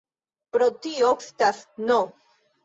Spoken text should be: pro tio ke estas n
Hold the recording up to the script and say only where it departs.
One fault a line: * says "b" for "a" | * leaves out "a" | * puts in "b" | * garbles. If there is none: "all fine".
* leaves out "ke"